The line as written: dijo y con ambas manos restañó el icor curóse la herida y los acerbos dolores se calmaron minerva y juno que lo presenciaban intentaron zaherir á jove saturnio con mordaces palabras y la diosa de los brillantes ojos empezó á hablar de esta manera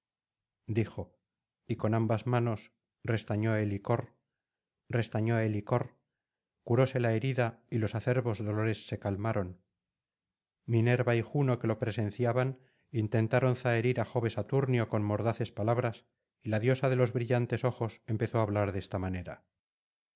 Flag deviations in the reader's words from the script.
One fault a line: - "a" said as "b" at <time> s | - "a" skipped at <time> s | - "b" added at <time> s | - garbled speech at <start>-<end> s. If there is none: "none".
- "restañó el icor" added at 4.9 s